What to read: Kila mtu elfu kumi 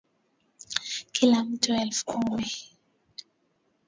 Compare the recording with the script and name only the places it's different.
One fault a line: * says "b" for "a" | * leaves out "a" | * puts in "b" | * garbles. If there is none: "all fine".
all fine